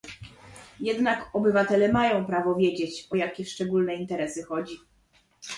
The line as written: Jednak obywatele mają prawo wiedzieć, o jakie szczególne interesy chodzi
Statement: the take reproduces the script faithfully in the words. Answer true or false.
true